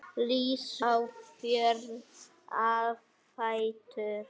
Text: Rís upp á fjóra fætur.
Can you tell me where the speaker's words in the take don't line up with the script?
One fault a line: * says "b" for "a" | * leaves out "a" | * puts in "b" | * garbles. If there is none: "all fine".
* leaves out "upp"